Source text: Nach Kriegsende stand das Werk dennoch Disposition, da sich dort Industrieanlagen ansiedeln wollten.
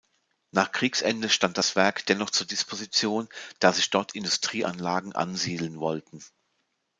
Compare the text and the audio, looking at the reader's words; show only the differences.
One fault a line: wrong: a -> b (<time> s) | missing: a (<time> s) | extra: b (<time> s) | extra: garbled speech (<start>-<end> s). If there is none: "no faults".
extra: zur (2.3 s)